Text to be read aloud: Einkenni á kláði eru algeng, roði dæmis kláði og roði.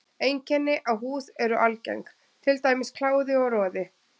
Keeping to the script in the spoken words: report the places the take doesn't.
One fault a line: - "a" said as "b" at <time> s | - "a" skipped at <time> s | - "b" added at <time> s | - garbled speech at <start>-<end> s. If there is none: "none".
- "kláði" said as "húð" at 1.0 s
- "roði" said as "til" at 2.5 s